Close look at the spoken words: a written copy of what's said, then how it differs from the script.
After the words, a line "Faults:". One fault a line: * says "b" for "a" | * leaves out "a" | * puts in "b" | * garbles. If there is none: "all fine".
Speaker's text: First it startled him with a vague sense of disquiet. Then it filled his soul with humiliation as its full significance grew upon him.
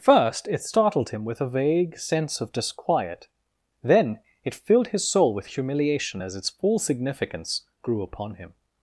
First it startled him with a vague sense of disquiet. Then it filled his soul with humiliation as its full significance grew upon him.
Faults:
all fine